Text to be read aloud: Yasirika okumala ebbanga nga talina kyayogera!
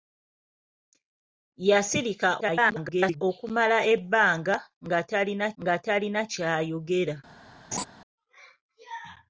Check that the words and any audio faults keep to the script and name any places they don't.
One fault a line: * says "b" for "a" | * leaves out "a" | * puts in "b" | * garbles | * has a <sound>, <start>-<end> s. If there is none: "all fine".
* garbles
* puts in "nga talina"
* has a laugh, 7.7-7.8 s